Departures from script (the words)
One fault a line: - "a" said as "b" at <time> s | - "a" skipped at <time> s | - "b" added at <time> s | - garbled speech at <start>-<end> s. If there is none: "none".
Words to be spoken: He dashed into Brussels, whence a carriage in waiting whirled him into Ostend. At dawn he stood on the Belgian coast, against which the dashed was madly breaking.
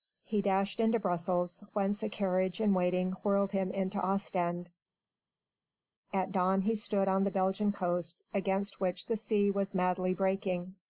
- "dashed" said as "sea" at 9.2 s